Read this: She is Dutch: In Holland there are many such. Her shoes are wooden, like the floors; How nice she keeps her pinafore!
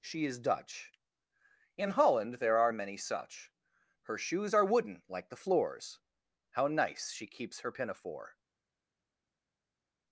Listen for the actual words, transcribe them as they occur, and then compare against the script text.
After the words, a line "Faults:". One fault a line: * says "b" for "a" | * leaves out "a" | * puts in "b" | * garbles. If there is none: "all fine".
She is Dutch: In Holland there are many such. Her shoes are wooden, like the floors; How nice she keeps her pinafore!
Faults:
all fine